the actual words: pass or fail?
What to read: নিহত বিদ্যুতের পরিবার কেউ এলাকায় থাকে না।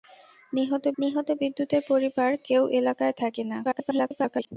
fail